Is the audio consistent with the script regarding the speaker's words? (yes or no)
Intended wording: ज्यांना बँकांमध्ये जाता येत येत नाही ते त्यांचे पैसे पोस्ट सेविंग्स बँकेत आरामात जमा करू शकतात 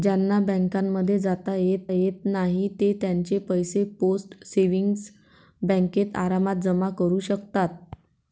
yes